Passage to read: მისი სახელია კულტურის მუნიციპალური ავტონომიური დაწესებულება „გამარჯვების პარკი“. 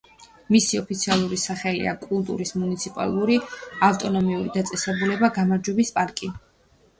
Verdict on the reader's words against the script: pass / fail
fail